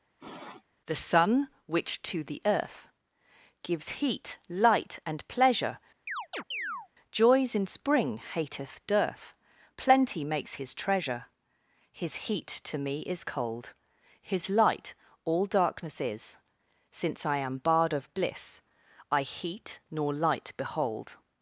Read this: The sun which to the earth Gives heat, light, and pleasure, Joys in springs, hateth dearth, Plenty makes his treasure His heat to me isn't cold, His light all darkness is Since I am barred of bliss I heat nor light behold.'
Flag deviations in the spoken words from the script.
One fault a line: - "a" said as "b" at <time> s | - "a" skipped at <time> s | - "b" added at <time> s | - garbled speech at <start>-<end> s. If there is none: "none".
- "springs" said as "spring" at 7.7 s
- "isn't" said as "is" at 13.0 s